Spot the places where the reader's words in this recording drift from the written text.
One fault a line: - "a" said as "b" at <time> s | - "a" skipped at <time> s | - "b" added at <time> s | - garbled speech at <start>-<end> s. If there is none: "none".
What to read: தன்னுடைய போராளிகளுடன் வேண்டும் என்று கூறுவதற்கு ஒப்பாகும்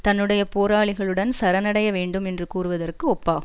- "சரணடைய" added at 1.4 s